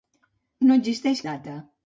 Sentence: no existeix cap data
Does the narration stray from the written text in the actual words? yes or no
yes